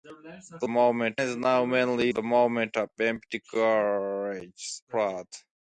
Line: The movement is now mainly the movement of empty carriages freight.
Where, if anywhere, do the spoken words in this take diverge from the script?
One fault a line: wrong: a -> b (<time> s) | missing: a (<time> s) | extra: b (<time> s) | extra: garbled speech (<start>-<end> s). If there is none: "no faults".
no faults